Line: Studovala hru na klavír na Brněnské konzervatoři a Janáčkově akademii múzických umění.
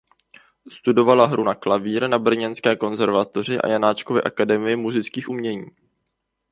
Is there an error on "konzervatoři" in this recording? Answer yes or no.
no